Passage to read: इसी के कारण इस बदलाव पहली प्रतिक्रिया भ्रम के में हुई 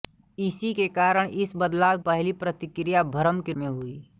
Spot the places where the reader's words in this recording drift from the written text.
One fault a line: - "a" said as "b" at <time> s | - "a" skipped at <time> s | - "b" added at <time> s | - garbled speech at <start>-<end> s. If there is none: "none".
none